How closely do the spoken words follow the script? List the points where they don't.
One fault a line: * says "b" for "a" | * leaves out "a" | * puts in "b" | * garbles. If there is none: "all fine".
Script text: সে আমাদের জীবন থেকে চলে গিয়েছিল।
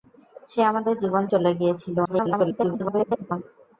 * leaves out "থেকে"
* garbles